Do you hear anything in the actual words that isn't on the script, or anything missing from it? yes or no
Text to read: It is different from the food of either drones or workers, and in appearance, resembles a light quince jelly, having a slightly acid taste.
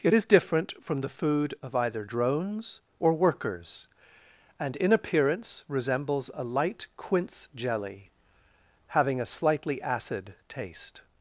no